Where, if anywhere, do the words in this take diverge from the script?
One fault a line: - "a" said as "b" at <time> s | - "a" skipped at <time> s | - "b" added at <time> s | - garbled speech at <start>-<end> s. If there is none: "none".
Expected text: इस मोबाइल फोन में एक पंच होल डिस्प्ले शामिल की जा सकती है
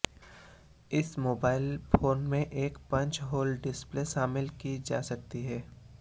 none